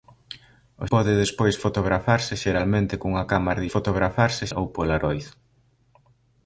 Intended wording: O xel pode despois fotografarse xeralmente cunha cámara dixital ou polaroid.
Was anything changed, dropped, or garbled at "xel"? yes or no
yes